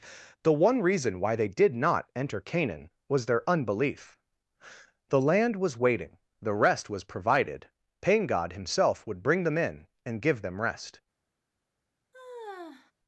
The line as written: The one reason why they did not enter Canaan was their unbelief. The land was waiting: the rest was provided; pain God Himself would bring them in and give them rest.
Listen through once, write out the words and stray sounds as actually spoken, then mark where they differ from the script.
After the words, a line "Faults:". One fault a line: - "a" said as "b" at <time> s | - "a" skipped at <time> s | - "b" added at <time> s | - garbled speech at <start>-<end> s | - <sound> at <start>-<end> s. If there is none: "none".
The one reason why they did not enter Canaan was their unbelief. The land was waiting: the rest was provided; pain God Himself would bring them in and give them rest.
Faults:
- sigh at 12.1-12.9 s